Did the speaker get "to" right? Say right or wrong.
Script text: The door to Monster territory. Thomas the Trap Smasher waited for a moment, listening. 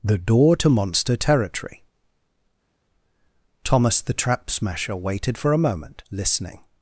right